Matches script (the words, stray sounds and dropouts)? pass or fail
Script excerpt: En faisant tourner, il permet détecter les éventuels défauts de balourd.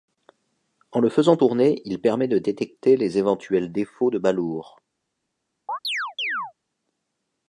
fail